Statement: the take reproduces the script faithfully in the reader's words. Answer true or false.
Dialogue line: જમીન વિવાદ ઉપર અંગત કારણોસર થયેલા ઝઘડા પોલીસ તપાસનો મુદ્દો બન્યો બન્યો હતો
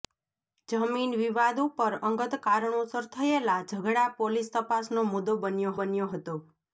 true